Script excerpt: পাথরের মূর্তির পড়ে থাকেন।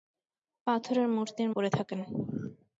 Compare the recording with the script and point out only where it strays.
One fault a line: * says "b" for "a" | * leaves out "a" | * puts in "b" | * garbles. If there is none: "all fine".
all fine